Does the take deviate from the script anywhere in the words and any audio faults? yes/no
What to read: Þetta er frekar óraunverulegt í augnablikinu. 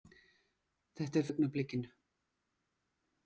yes